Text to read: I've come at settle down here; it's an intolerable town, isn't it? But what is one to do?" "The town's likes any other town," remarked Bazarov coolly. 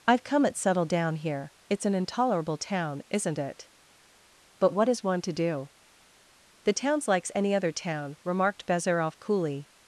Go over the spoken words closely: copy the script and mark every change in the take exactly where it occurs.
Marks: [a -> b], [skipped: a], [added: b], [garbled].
I've come at settle down here; it's an intolerable town, isn't it? But what is one to do?" "The town's likes any other town," remarked Bazarov coolly.